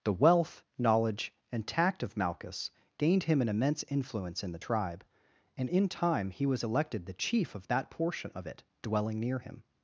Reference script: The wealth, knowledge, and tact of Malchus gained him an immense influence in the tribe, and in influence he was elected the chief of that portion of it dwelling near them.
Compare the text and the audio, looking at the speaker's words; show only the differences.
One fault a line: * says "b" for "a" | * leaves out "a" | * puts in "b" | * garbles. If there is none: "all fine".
* says "time" for "influence"
* says "him" for "them"